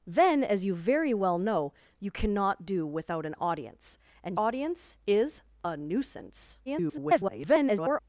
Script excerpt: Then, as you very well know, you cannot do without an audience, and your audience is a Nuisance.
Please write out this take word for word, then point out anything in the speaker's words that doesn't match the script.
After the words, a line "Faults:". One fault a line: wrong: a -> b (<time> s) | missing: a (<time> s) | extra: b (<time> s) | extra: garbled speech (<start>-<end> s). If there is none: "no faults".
Then, as you very well know, you cannot do without an audience, and audience is a Nuisance. [garbled]
Faults:
missing: your (4.4 s)
extra: garbled speech (6.7-8.0 s)